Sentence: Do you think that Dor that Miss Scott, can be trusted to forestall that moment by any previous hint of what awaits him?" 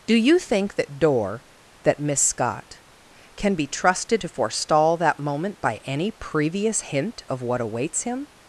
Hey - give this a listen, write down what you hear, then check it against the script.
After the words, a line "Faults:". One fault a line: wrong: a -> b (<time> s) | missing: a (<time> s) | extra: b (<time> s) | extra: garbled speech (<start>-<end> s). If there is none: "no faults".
Do you think that Dor that Miss Scott, can be trusted to forestall that moment by any previous hint of what awaits him?"
Faults:
no faults